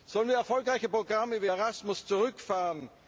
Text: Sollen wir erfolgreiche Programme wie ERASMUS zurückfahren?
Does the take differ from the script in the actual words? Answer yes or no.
no